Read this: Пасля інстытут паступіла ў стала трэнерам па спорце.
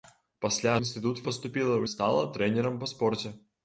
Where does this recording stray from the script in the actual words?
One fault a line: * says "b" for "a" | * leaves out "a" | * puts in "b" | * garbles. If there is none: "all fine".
all fine